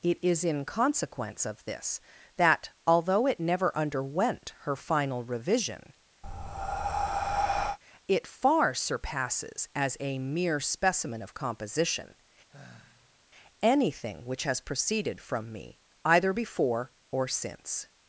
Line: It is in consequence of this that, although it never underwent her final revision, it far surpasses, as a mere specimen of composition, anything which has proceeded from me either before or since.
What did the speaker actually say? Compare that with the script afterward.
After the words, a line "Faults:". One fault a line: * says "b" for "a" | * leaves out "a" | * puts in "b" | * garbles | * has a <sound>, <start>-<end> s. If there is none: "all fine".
It is in consequence of this that, although it never underwent her final revision, it far surpasses, as a mere specimen of composition, anything which has proceeded from me either before or since.
Faults:
* has a breath, 6.2-7.8 s
* has a sigh, 12.5-13.2 s